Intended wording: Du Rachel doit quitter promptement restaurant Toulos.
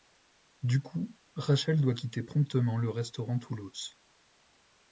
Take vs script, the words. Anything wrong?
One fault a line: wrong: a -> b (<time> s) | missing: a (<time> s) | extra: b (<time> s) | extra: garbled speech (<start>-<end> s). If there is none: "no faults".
extra: coup (0.8 s)
extra: le (2.8 s)